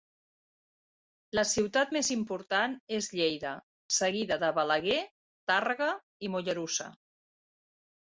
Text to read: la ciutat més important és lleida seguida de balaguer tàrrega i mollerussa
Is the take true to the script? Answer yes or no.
yes